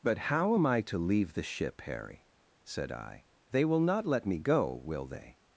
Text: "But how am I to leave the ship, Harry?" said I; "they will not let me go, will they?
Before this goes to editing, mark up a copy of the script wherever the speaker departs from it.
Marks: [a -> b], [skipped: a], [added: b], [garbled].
"But how am I to leave the ship, Harry?" said I; "they will not let me go, will they?